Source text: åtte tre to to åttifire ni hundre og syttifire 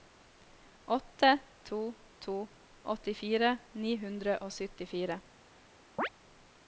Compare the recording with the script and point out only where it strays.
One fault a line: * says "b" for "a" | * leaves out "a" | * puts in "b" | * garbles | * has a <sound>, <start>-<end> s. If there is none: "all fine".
* leaves out "tre"
* has a chirp, 6.0-6.1 s